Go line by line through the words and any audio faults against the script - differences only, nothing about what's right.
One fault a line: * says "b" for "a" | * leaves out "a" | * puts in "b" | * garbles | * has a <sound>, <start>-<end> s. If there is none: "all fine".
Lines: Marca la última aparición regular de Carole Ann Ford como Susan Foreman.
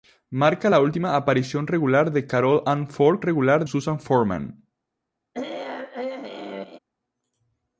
* says "regular" for "como"
* has a throat clearing, 5.3-6.8 s